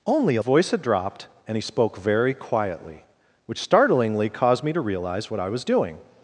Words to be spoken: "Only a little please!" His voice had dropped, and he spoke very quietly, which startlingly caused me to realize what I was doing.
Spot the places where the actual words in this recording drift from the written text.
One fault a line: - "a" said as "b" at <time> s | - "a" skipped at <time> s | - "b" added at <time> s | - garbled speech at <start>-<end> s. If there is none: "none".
- "little please His" skipped at 0.4 s